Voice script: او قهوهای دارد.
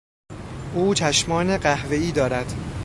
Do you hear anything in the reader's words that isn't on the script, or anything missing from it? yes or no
yes